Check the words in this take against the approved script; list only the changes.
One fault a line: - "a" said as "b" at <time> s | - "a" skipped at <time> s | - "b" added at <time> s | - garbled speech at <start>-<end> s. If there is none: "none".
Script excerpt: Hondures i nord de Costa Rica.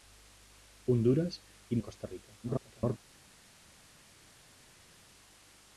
- "nord" skipped at 1.8 s
- garbled speech at 2.4-3.0 s